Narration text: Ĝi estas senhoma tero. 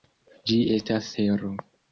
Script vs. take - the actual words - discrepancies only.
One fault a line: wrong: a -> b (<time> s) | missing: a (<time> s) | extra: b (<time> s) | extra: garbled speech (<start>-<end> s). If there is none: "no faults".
missing: senhoma (1.1 s)